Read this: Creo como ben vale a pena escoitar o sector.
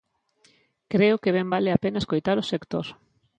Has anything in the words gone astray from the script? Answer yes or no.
yes